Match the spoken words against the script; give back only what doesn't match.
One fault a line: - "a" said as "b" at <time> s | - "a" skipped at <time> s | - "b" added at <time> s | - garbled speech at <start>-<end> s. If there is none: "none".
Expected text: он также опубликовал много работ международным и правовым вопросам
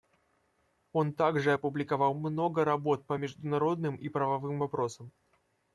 - "по" added at 3.0 s